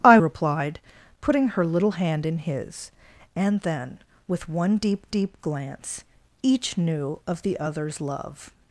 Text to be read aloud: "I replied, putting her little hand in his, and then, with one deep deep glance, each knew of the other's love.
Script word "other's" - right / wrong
right